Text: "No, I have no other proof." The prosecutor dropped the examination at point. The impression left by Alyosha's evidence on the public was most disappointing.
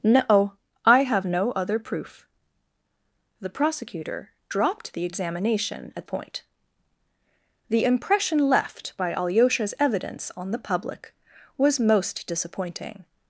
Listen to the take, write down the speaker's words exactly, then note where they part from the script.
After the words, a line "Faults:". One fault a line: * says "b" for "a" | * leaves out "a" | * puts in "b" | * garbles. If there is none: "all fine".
"No, I have no other proof." The prosecutor dropped the examination at point. The impression left by Alyosha's evidence on the public was most disappointing.
Faults:
all fine